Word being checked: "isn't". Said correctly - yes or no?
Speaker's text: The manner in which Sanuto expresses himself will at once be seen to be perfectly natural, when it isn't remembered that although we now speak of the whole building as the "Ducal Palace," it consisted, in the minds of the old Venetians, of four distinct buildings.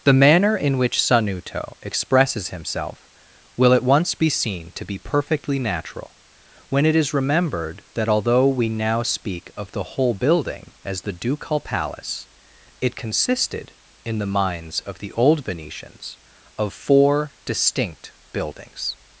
no